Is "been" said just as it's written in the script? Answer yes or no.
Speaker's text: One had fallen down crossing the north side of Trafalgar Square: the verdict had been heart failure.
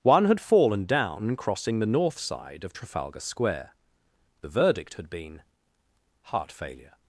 yes